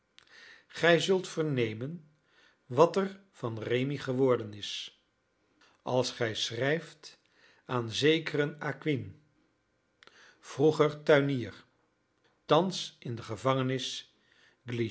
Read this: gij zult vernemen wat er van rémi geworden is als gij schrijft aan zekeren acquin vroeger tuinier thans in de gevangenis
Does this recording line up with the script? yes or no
yes